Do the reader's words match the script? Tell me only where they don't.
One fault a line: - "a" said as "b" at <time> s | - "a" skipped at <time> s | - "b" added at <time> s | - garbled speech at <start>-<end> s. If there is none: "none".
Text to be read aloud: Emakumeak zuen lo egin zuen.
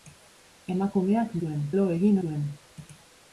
none